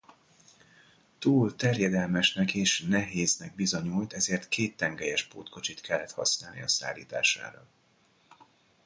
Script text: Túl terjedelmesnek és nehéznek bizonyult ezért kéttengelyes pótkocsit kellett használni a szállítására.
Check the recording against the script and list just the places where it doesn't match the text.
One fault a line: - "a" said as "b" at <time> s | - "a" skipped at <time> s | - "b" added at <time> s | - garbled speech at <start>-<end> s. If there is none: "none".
none